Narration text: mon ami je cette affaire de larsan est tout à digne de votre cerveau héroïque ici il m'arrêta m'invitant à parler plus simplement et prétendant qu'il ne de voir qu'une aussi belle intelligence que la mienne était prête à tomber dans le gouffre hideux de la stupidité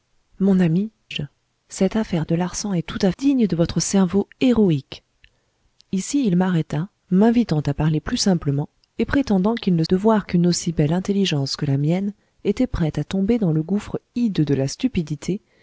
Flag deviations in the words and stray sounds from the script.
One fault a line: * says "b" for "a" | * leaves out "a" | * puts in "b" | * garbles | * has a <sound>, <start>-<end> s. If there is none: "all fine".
all fine